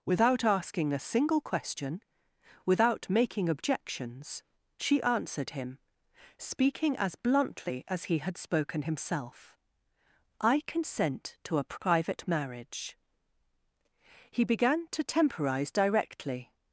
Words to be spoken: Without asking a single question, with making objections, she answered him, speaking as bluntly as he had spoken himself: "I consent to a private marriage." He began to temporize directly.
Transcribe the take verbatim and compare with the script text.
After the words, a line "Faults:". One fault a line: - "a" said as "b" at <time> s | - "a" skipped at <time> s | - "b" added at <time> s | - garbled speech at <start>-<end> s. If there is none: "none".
Without asking a single question, without making objections, she answered him, speaking as bluntly as he had spoken himself: "I consent to a private marriage." He began to temporize directly.
Faults:
- "with" said as "without" at 2.6 s